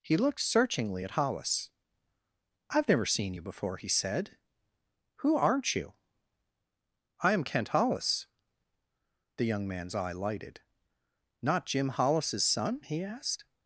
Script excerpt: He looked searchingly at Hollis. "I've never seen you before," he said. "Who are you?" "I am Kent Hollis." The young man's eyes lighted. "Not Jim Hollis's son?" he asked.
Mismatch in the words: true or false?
true